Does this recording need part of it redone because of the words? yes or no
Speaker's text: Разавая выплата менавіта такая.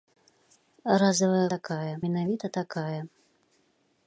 yes